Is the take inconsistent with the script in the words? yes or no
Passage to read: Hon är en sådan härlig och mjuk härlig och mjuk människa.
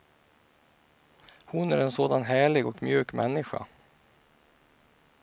yes